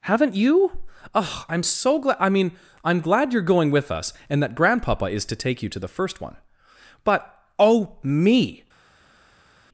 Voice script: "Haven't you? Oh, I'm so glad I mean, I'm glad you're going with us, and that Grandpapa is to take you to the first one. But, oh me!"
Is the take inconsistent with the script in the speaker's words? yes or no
no